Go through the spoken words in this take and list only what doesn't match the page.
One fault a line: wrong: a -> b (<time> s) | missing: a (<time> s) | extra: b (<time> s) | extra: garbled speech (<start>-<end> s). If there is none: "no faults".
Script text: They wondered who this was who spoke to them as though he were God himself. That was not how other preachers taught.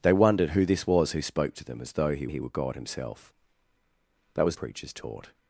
extra: he (2.3 s)
missing: not how other (4.6 s)